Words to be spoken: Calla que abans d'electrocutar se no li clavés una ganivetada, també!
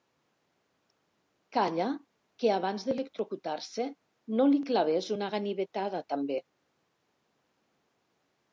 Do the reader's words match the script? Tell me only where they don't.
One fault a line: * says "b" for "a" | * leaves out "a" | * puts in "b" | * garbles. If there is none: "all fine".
all fine